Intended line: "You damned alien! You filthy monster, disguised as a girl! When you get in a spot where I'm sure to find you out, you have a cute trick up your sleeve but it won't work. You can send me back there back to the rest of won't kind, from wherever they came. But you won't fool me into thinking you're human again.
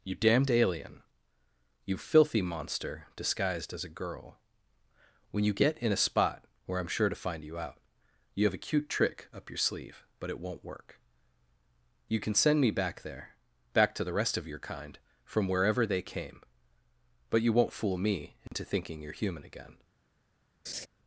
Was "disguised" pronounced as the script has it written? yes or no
yes